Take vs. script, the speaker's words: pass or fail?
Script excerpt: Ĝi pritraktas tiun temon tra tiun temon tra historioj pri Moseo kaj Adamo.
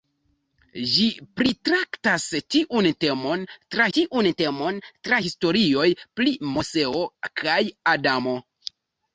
pass